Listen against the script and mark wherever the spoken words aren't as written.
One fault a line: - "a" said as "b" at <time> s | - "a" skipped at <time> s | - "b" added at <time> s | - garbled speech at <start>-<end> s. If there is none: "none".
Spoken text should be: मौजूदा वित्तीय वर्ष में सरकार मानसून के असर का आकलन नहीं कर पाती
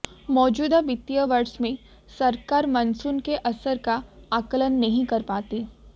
none